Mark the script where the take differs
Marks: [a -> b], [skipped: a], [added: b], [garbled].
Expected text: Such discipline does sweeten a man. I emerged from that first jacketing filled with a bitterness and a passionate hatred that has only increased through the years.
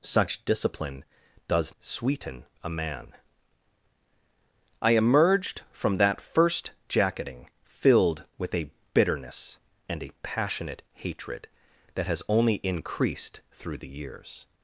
Such discipline does sweeten a man. I emerged from that first jacketing filled with a bitterness and a passionate hatred that has only increased through the years.